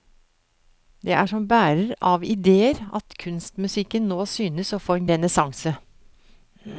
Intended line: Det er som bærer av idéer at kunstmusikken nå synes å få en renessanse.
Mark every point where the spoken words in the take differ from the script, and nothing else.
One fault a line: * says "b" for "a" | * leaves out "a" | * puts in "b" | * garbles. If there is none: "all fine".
all fine